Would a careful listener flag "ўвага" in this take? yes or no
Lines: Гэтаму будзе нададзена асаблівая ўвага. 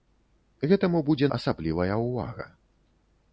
no